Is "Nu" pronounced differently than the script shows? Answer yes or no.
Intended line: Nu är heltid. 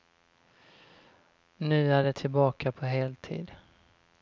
no